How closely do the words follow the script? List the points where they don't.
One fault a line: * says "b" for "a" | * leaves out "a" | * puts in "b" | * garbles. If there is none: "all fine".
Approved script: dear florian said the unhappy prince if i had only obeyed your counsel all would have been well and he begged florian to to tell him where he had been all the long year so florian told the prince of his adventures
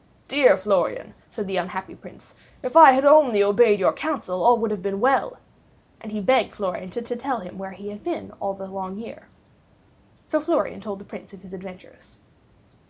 all fine